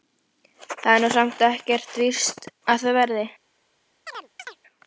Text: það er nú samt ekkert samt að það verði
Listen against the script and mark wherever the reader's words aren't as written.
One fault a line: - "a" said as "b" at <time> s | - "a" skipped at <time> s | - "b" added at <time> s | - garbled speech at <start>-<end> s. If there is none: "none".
- "samt" said as "víst" at 2.0 s